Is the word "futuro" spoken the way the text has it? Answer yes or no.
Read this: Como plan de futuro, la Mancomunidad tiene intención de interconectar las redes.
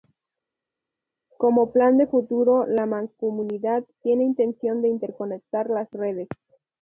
yes